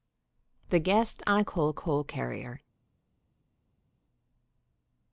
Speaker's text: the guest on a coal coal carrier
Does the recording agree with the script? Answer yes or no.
yes